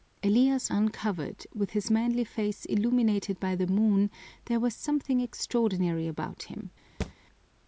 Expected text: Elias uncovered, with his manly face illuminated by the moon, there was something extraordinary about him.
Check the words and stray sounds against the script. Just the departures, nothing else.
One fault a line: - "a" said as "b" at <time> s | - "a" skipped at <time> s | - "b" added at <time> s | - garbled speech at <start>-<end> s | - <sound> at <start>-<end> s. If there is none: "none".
- thud at 7.0-7.1 s